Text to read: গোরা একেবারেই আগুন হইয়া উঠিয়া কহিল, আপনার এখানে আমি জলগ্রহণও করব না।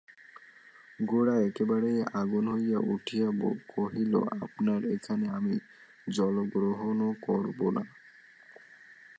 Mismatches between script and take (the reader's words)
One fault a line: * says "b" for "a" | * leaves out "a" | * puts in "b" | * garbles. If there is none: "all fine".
all fine